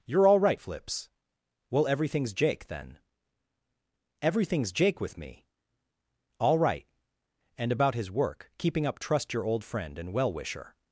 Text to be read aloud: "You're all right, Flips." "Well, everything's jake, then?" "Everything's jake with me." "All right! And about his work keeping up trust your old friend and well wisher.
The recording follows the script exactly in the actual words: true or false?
true